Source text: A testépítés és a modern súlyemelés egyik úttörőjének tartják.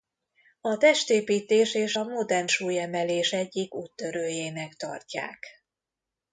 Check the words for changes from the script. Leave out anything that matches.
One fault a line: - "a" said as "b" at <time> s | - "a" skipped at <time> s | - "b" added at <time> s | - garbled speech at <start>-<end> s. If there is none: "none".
none